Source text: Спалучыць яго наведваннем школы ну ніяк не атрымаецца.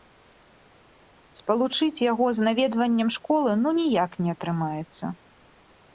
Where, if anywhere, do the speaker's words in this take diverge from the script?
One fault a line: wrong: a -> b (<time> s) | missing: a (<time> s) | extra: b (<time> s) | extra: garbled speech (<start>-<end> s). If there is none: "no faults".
extra: з (2.4 s)